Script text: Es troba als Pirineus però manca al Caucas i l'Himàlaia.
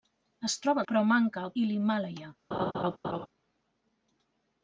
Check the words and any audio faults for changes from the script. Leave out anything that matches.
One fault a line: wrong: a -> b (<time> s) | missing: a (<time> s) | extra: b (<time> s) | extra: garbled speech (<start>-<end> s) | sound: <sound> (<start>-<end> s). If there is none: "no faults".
missing: als Pirineus (0.8 s)
missing: Caucas (1.5 s)
sound: laugh (2.5-3.3 s)